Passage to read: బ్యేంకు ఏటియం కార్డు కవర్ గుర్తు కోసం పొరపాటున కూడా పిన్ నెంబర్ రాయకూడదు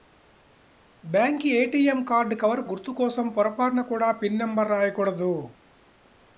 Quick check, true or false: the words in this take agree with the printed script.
true